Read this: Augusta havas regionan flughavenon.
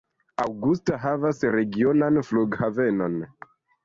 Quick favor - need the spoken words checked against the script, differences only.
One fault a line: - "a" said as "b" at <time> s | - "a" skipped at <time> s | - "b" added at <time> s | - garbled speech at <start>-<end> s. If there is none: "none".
none